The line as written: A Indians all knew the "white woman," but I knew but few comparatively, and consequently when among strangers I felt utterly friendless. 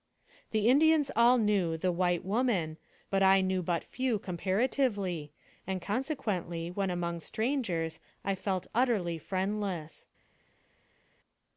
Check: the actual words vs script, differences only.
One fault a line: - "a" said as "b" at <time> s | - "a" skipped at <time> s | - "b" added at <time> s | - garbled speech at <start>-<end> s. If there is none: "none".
- "A" said as "The" at 0.5 s